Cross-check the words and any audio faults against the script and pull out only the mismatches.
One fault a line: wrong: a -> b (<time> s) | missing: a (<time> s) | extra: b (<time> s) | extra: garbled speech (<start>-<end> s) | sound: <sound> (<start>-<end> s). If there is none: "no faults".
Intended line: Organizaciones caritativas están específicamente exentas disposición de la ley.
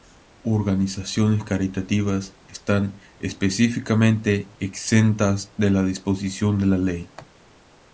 extra: de la (5.6 s)